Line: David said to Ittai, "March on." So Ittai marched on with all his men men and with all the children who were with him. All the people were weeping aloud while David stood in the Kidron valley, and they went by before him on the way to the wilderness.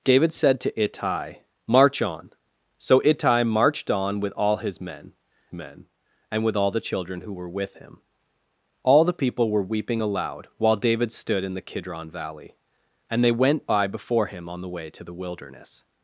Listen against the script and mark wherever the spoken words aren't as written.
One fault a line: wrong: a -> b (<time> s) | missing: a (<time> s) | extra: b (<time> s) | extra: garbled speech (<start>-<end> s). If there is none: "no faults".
no faults